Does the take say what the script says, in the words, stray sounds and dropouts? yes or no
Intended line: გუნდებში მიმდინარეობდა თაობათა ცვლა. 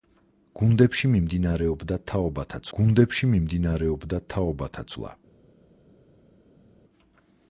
no